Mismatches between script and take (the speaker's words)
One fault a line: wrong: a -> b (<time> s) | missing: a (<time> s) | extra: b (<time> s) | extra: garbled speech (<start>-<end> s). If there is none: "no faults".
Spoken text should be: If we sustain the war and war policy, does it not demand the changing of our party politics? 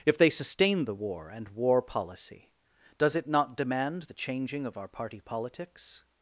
wrong: we -> they (0.2 s)